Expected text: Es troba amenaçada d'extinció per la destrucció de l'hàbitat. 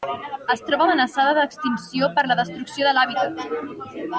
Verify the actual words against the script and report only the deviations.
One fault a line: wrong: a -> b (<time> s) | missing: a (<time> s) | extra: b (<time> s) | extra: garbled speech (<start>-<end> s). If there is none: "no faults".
no faults